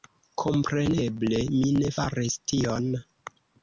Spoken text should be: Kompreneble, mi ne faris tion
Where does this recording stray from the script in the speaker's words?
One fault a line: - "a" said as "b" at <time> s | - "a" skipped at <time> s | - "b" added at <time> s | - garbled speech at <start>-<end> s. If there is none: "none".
none